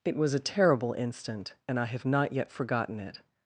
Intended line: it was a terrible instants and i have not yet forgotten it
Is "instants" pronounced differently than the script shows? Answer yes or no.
yes